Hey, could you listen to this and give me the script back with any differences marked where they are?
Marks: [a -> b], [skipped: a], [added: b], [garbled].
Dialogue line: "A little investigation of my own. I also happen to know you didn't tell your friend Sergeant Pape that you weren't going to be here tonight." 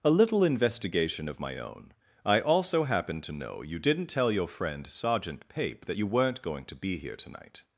"A little investigation of my own. I also happen to know you didn't tell your friend Sergeant Pape that you weren't going to be here tonight."